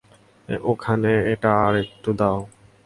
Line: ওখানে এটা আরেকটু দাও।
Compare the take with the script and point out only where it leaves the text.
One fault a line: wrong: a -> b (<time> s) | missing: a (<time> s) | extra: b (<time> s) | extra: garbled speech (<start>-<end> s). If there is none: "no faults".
no faults